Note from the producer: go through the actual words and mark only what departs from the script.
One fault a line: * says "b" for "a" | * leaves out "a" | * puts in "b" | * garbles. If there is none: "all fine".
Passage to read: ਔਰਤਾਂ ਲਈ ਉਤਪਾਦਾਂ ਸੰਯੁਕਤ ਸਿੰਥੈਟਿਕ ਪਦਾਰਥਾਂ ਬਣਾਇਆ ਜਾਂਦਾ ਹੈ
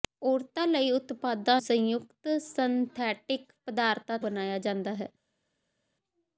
all fine